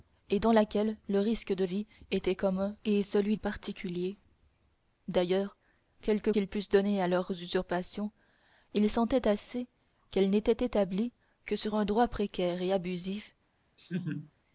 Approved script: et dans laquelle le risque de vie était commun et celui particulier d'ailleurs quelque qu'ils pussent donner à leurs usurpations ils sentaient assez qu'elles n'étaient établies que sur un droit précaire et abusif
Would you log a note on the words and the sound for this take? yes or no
yes